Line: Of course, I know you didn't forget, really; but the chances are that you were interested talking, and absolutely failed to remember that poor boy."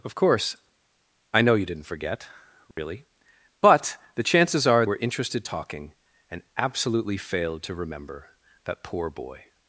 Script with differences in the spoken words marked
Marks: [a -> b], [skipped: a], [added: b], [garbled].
Of course, I know you didn't forget, really; but the chances are [skipped: that you] were interested talking, and absolutely failed to remember that poor boy."